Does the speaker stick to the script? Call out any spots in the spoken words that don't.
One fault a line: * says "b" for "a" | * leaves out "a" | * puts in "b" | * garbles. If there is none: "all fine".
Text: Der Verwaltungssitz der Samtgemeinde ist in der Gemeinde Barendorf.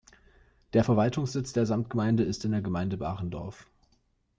all fine